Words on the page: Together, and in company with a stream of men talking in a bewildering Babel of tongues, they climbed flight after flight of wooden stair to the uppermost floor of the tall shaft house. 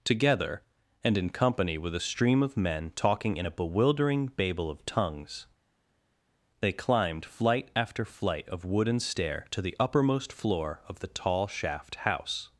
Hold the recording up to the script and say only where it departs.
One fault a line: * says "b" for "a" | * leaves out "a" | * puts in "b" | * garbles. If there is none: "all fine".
all fine